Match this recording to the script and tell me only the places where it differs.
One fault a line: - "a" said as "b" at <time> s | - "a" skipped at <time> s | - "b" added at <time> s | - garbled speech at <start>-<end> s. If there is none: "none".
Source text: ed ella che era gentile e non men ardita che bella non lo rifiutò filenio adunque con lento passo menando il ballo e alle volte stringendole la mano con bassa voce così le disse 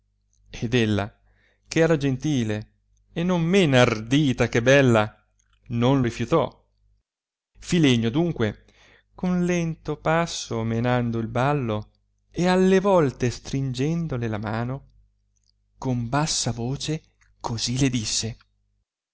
- "lo" skipped at 6.0 s